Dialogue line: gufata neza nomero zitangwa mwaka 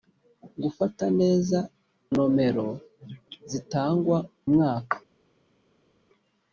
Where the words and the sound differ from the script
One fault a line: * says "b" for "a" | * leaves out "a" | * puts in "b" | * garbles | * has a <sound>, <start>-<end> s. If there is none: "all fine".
all fine